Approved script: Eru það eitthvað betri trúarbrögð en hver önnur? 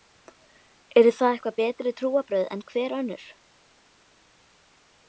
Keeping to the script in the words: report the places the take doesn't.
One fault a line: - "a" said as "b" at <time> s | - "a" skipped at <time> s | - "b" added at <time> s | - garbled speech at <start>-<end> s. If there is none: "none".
none